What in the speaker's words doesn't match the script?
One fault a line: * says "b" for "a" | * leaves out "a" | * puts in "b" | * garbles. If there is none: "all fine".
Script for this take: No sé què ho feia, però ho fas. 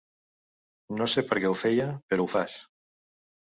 * puts in "per"